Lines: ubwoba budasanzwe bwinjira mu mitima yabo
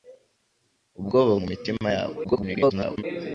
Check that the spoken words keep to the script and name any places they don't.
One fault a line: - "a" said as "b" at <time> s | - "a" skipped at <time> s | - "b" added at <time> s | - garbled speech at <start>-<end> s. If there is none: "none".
- "budasanzwe bwinjira" skipped at 1.3 s
- garbled speech at 2.2-3.0 s